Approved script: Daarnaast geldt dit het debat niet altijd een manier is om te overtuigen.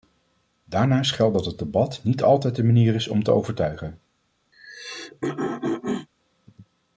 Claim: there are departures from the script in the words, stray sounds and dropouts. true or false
true